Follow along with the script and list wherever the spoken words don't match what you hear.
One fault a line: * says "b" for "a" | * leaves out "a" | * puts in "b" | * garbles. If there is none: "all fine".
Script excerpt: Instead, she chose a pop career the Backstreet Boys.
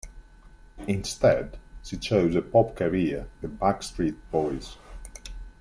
all fine